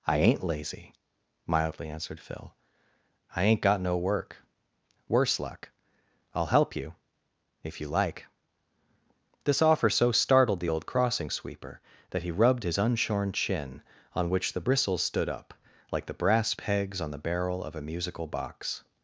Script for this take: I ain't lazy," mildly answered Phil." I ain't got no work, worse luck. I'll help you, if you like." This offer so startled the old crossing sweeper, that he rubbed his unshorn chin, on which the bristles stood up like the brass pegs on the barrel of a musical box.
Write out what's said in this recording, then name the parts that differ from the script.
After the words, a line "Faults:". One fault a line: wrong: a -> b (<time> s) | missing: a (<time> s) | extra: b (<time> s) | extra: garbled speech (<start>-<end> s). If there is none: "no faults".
I ain't lazy," mildly answered Phil." I ain't got no work, worse luck. I'll help you, if you like." This offer so startled the old crossing sweeper, that he rubbed his unshorn chin, on which the bristles stood up like the brass pegs on the barrel of a musical box.
Faults:
no faults